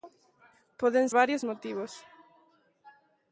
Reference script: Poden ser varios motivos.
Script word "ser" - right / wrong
wrong